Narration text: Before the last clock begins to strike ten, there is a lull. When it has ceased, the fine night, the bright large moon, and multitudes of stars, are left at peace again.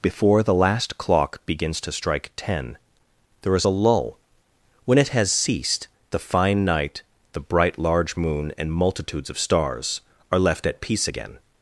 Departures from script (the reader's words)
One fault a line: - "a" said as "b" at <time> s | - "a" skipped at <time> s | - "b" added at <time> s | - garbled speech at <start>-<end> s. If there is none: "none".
none